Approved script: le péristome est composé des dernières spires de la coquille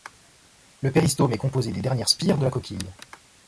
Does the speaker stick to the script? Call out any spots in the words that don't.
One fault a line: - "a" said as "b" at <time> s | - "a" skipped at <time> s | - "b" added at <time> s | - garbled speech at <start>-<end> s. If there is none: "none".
none